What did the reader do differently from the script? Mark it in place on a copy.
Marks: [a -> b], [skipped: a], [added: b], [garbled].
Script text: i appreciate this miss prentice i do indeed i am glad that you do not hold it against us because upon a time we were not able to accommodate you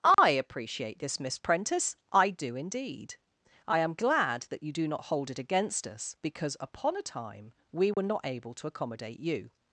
i appreciate this miss prentice i do indeed i am glad that you do not hold it against us because upon a time we were not able to accommodate you